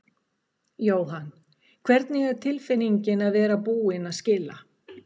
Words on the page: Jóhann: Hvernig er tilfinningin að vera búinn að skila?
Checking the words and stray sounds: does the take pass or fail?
pass